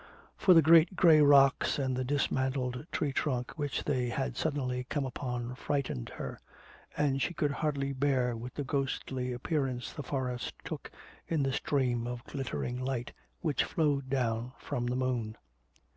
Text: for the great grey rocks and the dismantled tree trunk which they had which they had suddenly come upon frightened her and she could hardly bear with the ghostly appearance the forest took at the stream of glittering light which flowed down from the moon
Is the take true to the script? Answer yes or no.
no